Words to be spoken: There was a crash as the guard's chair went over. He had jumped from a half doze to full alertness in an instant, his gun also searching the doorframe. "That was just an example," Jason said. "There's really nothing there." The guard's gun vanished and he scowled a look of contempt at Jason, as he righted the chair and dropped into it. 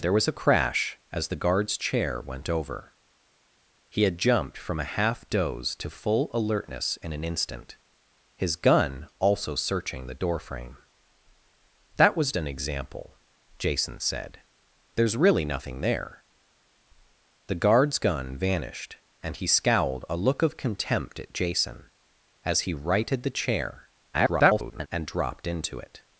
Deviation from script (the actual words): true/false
true